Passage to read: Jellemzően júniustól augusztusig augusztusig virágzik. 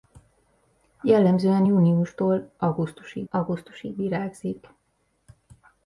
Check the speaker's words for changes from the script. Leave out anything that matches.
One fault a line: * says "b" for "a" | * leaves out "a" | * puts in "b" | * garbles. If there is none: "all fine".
all fine